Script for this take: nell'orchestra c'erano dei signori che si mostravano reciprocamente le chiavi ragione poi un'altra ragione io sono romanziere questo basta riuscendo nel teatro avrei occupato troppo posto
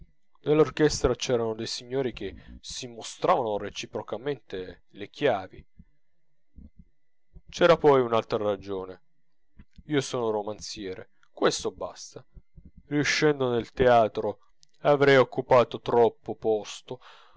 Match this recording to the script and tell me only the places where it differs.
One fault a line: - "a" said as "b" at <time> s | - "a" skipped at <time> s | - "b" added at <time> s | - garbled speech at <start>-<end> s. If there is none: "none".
- "ragione" said as "c'era" at 7.5 s